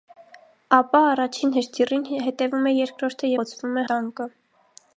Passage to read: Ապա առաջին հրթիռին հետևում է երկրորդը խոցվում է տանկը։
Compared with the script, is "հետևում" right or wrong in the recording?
right